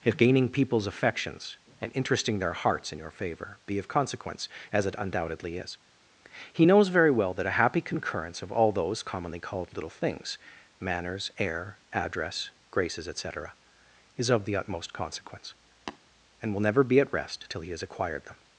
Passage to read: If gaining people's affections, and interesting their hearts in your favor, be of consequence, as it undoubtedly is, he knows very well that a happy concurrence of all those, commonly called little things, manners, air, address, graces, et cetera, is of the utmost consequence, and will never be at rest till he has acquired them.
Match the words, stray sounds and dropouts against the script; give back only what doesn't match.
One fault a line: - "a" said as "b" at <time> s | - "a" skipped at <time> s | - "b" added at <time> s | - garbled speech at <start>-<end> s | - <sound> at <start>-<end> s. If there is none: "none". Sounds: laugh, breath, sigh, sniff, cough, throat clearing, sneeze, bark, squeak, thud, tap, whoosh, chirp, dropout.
- tap at 15.9-16.0 s